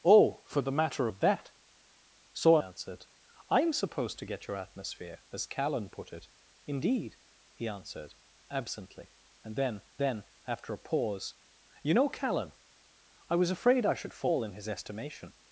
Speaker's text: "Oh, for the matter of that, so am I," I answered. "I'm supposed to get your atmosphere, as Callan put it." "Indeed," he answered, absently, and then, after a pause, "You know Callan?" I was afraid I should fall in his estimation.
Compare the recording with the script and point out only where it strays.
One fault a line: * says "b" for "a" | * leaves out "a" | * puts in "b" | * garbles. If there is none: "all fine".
* leaves out "am I I"
* puts in "then"